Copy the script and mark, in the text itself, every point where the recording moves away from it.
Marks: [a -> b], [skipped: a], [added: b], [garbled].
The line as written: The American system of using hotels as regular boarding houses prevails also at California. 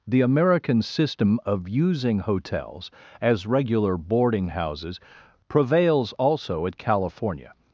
The American system of using hotels as regular boarding houses prevails also at California.